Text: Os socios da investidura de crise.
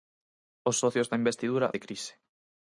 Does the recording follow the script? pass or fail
pass